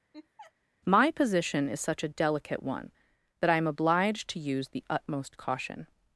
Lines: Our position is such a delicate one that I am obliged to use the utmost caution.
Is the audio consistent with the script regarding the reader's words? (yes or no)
no